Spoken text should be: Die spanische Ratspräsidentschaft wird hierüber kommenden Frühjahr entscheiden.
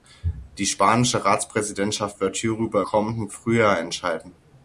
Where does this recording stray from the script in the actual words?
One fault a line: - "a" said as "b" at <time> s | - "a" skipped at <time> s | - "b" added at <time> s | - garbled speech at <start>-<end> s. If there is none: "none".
none